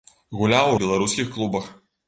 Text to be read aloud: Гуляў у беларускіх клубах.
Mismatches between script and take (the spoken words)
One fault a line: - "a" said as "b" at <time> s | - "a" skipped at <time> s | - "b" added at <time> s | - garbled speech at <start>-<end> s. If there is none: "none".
none